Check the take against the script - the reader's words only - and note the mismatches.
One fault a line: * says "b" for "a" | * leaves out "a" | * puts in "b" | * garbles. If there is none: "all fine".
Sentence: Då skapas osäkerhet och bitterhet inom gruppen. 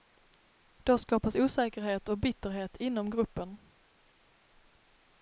all fine